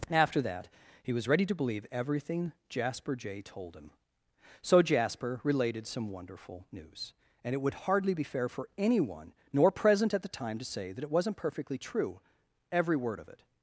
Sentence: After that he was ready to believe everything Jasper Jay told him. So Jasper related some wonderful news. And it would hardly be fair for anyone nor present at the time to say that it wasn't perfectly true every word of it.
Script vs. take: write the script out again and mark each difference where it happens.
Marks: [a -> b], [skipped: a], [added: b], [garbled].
After that he was ready to believe everything Jasper Jay told him. So Jasper related some wonderful news. And it would hardly be fair for anyone nor present at the time to say that it wasn't perfectly true every word of it.